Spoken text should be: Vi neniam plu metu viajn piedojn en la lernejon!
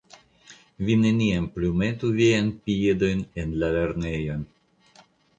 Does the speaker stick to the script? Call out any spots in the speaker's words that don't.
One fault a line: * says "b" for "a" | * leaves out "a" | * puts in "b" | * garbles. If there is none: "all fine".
all fine